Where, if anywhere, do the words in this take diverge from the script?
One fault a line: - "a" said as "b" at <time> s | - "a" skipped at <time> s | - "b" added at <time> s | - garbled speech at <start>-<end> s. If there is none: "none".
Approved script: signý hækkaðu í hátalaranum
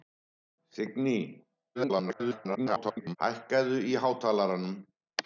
- garbled speech at 1.7-3.2 s